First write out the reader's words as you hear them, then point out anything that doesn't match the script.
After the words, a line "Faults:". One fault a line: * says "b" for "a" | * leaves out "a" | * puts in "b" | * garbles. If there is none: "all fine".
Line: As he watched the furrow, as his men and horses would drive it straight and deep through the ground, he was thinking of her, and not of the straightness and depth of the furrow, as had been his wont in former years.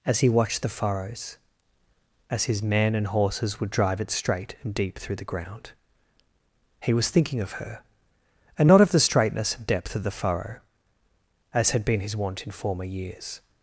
As he watched the furrows, as his men and horses would drive it straight and deep through the ground, he was thinking of her, and not of the straightness and depth of the furrow, as had been his wont in former years.
Faults:
* says "furrows" for "furrow"